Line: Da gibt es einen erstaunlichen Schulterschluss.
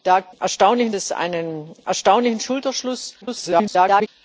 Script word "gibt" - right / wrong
wrong